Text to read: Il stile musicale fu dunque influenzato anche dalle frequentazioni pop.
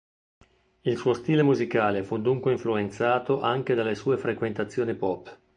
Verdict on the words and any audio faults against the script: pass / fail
fail